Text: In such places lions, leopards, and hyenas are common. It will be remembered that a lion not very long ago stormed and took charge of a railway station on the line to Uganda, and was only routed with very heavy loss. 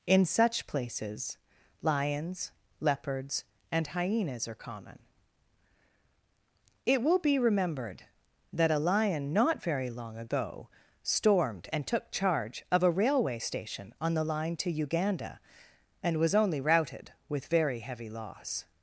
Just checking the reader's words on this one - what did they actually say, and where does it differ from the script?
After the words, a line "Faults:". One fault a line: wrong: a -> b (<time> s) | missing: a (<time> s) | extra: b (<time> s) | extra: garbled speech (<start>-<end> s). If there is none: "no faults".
In such places lions, leopards, and hyenas are common. It will be remembered that a lion not very long ago stormed and took charge of a railway station on the line to Uganda, and was only routed with very heavy loss.
Faults:
no faults